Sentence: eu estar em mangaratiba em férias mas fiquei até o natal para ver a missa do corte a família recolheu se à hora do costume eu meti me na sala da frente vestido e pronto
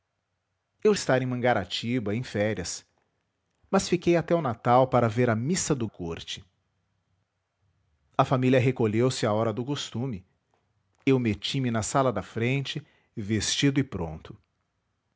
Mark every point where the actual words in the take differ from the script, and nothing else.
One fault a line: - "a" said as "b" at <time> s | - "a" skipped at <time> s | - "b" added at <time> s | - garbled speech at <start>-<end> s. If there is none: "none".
none